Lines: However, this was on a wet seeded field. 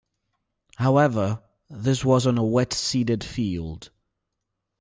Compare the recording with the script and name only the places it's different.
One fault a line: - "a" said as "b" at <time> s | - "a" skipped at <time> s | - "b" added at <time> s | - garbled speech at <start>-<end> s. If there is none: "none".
none